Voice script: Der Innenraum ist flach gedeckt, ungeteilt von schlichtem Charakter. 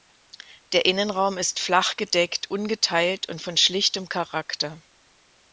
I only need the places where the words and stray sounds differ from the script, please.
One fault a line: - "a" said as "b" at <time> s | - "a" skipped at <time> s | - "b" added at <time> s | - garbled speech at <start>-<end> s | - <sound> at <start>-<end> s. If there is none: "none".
- "und" added at 3.3 s